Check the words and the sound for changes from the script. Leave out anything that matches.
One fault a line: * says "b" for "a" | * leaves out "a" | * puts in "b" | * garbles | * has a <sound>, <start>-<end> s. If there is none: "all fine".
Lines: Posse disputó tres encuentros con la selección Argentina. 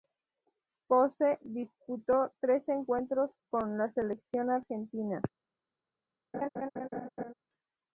* has a laugh, 6.3-7.3 s